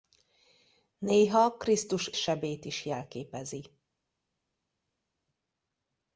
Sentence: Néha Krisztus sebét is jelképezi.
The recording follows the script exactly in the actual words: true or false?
true